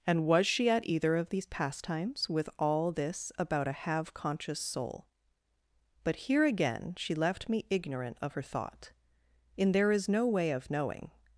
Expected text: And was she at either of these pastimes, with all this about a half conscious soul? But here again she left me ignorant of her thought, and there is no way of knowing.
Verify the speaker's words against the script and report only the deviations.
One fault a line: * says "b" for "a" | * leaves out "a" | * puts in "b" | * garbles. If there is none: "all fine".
* says "have" for "half"
* says "in" for "and"